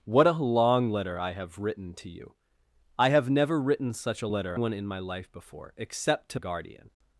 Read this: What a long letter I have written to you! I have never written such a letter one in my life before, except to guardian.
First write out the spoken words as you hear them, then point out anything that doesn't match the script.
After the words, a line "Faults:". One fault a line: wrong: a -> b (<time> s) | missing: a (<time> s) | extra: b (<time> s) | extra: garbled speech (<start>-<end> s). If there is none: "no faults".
What a long letter I have written to you! I have never written such a letter one in my life before, except to guardian.
Faults:
no faults